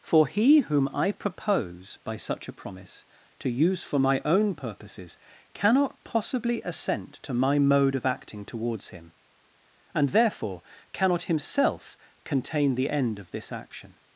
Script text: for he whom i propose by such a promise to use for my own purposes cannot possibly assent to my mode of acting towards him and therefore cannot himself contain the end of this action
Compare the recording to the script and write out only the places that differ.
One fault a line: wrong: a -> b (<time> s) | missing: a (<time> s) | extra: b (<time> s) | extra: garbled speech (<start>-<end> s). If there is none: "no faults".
no faults